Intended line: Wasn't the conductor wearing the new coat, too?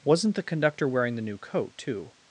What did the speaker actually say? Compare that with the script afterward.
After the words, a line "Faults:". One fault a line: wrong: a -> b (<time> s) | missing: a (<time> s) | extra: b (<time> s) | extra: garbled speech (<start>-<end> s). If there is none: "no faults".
Wasn't the conductor wearing the new coat, too?
Faults:
no faults